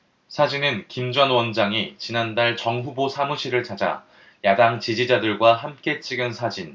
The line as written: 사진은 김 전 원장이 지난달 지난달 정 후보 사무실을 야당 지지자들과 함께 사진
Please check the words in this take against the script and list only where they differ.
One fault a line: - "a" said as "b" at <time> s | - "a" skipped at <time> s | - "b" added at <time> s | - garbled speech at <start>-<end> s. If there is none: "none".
- "지난달" skipped at 2.5 s
- "찾아" added at 3.6 s
- "찍은" added at 6.0 s